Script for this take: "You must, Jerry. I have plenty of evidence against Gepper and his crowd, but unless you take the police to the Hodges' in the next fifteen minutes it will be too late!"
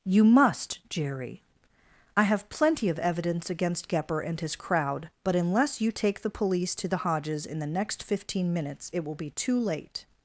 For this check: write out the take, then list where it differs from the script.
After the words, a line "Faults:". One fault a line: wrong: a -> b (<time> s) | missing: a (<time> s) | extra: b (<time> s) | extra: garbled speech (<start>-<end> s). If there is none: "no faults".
"You must, Jerry. I have plenty of evidence against Gepper and his crowd, but unless you take the police to the Hodges' in the next fifteen minutes it will be too late!"
Faults:
no faults